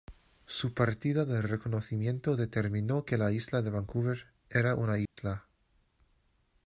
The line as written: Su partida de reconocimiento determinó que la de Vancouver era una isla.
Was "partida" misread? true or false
false